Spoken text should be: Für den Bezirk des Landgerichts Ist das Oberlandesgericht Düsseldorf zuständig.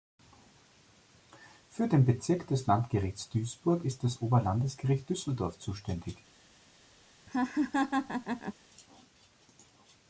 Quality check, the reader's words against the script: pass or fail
fail